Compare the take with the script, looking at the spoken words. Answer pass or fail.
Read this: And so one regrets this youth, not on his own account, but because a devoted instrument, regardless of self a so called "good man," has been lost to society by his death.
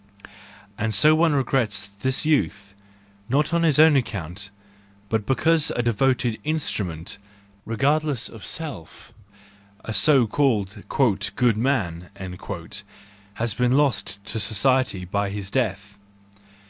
pass